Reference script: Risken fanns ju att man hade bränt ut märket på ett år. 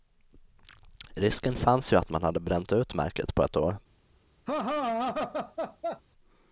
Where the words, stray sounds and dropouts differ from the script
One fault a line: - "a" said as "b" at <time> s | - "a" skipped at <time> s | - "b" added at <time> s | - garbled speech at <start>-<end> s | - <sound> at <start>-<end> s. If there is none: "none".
- laugh at 4.5-6.0 s